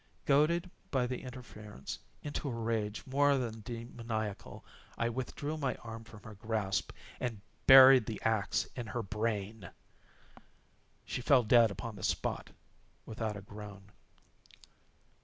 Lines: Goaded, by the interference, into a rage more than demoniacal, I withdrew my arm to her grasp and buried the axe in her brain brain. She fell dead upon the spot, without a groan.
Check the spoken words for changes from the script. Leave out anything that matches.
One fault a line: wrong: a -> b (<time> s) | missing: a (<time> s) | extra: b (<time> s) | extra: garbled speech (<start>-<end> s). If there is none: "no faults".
wrong: to -> from (6.0 s)
missing: brain (9.7 s)